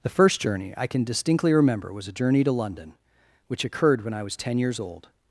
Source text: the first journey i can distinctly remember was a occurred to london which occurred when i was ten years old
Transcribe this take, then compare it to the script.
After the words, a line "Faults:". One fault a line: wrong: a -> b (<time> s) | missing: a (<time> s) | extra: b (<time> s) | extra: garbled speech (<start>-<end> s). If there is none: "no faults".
the first journey i can distinctly remember was a journey to london which occurred when i was ten years old
Faults:
wrong: occurred -> journey (2.1 s)